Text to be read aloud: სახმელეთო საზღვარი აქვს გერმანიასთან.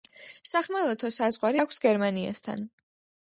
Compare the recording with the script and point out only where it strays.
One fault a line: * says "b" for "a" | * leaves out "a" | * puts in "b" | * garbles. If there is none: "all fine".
all fine